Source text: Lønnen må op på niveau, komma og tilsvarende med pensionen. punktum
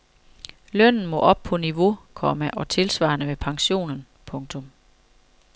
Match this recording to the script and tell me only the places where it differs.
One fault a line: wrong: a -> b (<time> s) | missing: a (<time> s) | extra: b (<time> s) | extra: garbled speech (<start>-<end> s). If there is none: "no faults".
no faults